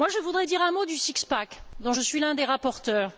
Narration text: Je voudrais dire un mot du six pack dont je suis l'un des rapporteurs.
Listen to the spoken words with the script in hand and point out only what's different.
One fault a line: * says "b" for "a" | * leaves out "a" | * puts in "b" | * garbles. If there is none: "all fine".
all fine